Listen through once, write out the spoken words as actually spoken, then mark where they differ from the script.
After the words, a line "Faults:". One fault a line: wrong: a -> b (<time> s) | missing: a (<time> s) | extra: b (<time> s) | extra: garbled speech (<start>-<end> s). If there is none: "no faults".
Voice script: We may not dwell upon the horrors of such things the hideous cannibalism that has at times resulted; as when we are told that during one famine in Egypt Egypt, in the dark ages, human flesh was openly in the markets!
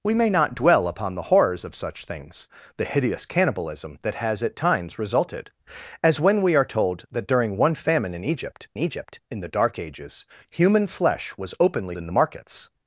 We may not dwell upon the horrors of such things the hideous cannibalism that has at times resulted; as when we are told that during one famine in Egypt Egypt, in the dark ages, human flesh was openly in the markets!
Faults:
no faults